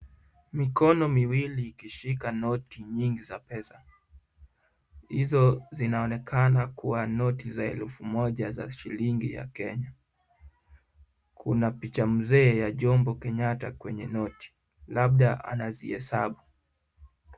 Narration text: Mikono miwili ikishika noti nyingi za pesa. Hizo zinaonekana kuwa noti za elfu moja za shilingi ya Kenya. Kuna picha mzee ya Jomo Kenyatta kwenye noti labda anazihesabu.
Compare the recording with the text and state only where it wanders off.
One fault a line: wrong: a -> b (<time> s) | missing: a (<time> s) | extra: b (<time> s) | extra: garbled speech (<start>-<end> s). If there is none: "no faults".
no faults